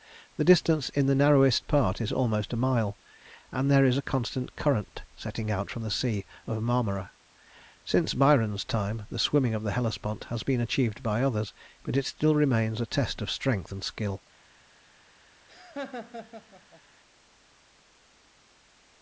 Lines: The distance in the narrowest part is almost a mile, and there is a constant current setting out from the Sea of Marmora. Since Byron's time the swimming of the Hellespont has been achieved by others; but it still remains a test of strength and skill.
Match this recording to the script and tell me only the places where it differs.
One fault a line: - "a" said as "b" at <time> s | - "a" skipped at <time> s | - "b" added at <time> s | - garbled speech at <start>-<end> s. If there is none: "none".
none